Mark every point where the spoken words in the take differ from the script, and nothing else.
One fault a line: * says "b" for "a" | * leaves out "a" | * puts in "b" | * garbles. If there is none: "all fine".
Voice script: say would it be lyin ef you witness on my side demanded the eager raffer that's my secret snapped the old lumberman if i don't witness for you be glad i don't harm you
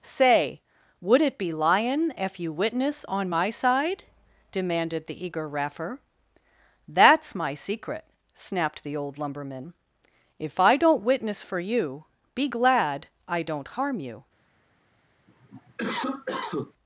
all fine